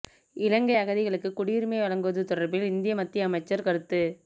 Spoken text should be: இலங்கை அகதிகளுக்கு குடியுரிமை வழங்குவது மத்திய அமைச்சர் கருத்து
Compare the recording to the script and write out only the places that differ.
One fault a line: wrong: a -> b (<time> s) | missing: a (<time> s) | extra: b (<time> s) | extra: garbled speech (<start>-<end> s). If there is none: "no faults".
extra: தொடர்பில் இந்திய (2.2 s)